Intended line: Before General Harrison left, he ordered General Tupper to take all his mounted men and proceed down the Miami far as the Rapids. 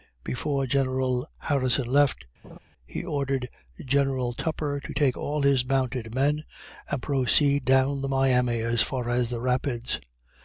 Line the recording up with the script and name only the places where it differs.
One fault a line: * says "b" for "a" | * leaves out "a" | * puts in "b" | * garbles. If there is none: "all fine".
* puts in "as"